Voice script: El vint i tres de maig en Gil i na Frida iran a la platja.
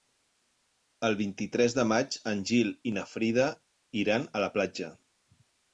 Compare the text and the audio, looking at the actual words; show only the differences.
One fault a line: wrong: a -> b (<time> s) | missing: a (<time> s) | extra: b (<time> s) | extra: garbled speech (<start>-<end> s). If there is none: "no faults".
no faults